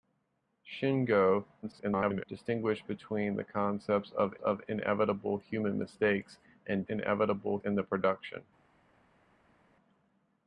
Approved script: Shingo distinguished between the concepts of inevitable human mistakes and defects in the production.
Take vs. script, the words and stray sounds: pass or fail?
fail